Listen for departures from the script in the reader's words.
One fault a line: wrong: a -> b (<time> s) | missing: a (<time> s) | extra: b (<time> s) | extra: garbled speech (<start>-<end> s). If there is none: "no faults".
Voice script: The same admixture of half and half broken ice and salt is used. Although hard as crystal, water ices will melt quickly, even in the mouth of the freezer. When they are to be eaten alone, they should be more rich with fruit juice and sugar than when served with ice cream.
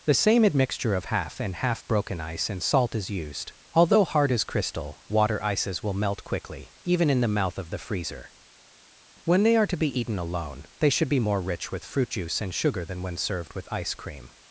no faults